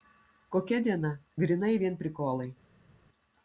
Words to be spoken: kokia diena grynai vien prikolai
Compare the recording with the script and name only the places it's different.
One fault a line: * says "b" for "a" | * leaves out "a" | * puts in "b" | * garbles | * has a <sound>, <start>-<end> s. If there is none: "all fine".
all fine